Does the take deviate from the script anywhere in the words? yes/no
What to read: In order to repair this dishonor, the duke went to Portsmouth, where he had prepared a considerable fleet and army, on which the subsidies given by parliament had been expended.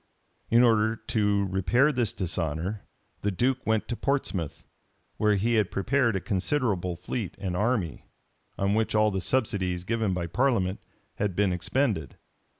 yes